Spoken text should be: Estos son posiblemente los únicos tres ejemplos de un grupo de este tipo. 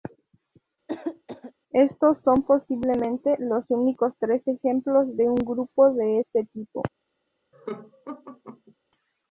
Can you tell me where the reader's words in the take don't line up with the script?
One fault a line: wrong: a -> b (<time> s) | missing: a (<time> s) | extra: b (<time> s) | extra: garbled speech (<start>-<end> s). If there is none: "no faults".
no faults